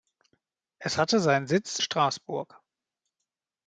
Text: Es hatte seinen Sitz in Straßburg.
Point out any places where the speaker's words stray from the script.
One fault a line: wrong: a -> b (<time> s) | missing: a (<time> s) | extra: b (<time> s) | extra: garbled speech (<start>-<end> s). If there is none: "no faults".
missing: in (1.8 s)